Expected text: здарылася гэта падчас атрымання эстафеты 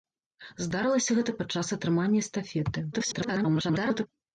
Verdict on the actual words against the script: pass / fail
fail